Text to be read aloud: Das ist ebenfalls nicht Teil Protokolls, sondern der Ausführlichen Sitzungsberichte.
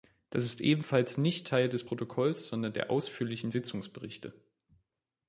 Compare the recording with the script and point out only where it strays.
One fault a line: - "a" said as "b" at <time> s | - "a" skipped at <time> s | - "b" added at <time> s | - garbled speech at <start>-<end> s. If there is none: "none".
- "des" added at 1.7 s